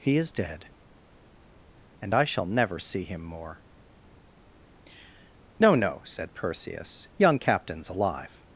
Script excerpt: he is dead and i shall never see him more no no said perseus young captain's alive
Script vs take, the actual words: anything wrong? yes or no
no